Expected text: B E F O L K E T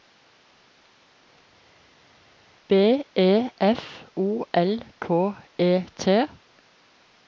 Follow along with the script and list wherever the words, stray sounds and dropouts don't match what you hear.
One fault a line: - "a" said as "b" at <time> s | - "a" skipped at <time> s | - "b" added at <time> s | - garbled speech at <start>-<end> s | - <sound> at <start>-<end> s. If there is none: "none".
none